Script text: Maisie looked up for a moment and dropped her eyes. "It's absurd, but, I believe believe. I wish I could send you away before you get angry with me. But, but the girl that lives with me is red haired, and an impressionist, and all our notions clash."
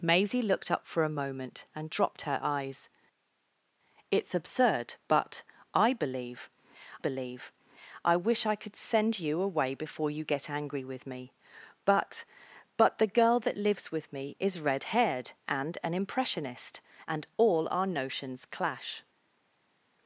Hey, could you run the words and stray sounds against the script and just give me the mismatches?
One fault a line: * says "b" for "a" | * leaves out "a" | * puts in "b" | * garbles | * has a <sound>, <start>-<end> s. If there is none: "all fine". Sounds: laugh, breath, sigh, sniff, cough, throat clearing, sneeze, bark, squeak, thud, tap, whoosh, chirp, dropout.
all fine